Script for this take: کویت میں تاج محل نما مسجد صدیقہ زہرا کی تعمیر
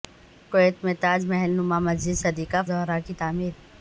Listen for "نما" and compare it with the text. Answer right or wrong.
right